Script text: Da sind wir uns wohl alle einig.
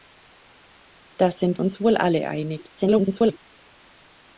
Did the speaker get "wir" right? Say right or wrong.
wrong